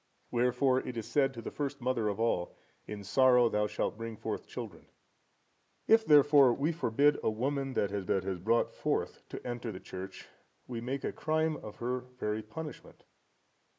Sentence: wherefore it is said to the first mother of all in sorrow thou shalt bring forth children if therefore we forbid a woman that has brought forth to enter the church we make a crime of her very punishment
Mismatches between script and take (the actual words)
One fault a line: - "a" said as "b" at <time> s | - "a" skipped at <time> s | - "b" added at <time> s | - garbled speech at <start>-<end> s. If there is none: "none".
- "that has" added at 8.1 s